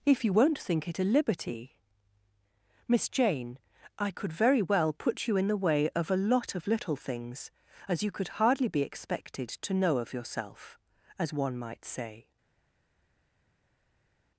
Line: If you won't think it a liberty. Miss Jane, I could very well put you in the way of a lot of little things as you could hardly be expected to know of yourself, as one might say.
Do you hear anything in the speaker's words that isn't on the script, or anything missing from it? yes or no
no